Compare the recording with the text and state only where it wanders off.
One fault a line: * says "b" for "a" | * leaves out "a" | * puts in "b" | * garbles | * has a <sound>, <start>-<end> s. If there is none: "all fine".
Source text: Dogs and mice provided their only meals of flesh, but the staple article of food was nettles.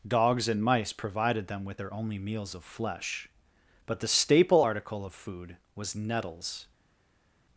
* puts in "them with"